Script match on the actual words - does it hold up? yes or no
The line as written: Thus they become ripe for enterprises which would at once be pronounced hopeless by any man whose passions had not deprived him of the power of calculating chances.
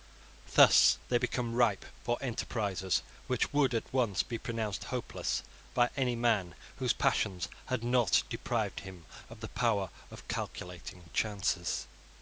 yes